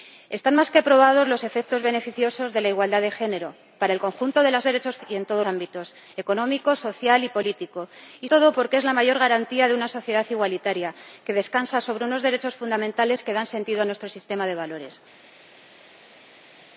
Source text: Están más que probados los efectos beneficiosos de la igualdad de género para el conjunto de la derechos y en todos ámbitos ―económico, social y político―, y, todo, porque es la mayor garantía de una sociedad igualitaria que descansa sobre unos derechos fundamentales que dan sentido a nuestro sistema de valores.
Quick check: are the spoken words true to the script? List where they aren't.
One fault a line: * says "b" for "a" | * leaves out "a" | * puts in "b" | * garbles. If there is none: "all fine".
all fine